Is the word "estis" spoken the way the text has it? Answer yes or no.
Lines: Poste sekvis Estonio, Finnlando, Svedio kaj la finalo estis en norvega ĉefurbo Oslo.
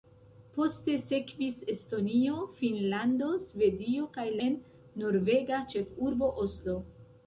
no